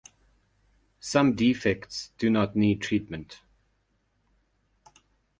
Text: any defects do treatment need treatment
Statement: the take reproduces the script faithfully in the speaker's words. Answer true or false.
false